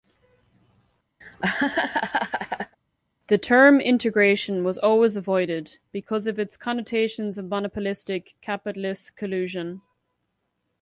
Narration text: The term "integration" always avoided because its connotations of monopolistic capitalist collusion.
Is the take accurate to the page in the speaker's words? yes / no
no